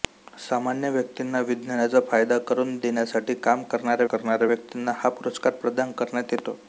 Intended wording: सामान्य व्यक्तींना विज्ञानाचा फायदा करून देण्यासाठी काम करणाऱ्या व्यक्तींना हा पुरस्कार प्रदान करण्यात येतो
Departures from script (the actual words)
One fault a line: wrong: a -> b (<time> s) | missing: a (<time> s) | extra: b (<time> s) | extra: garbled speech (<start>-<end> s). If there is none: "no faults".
extra: करणाऱ्या (4.0 s)